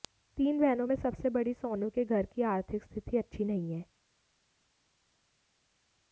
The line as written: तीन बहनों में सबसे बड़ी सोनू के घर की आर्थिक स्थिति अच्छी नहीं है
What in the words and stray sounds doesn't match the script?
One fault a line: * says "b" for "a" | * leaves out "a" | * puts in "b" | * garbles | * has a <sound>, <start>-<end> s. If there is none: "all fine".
all fine